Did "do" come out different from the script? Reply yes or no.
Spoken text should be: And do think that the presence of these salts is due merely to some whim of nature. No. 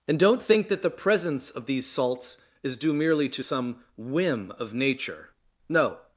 yes